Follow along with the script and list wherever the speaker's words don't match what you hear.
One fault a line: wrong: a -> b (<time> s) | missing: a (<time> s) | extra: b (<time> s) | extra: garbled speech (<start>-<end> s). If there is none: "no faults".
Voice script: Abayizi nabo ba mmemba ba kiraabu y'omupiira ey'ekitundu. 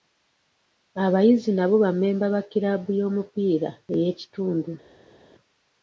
no faults